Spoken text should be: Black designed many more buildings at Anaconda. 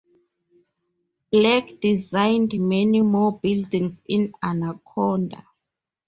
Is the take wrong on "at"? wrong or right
wrong